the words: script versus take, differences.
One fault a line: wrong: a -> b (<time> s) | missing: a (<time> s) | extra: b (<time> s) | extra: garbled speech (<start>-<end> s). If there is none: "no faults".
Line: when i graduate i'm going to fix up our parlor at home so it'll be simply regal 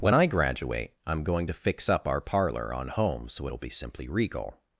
wrong: at -> on (2.7 s)